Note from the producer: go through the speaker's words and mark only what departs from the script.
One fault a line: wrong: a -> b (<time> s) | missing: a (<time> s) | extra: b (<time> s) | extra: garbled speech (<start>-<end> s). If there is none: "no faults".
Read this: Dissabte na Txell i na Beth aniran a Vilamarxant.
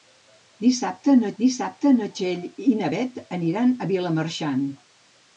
extra: dissabte na (1.4 s)